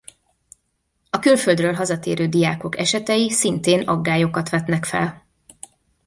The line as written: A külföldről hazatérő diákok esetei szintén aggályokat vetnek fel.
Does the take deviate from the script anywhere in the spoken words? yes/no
no